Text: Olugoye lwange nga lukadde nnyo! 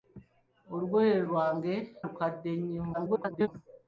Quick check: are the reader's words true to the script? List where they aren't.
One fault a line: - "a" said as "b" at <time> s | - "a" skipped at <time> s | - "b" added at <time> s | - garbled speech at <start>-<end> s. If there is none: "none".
- "nga" skipped at 1.7 s
- garbled speech at 2.9-3.5 s